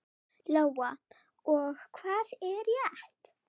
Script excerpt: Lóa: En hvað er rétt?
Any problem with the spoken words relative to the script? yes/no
yes